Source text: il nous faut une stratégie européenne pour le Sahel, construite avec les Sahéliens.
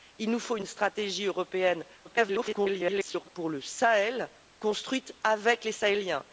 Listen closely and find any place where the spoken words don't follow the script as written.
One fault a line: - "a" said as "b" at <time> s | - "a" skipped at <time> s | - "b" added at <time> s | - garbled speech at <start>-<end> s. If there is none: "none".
- garbled speech at 2.0-3.3 s